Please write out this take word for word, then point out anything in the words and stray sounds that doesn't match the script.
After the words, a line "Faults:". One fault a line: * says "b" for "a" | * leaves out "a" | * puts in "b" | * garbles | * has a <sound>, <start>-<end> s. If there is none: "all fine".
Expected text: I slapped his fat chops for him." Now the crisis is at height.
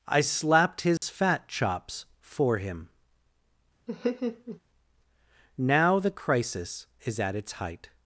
I slapped his fat chops for him." Now the crisis is at its height.
Faults:
* has a dropout, 1.0-1.0 s
* has a laugh, 3.9-4.6 s
* puts in "its"